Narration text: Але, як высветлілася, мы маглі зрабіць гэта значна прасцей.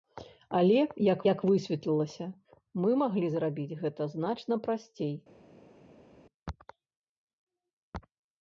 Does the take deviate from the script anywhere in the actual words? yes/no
yes